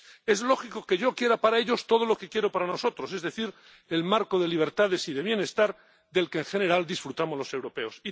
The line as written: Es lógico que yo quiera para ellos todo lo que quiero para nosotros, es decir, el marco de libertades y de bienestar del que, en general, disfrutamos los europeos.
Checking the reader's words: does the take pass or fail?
pass